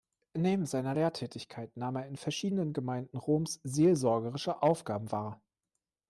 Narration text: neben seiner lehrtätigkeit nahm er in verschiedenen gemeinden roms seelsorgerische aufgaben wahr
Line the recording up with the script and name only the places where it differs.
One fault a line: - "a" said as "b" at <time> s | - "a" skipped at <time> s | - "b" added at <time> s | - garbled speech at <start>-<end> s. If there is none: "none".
none